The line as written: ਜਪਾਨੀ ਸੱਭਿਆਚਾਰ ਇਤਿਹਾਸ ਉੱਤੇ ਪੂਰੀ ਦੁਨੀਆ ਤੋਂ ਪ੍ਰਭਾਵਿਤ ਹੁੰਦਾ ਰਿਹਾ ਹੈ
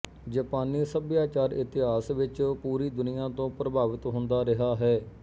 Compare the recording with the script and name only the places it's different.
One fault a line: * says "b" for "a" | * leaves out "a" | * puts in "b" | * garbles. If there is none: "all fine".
* says "ਵਿੱਚ" for "ਉੱਤੇ"